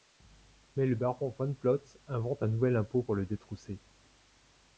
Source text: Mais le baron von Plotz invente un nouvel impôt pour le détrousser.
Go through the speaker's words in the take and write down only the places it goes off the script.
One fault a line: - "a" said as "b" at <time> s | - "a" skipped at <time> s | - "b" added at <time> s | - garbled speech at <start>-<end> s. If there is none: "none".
none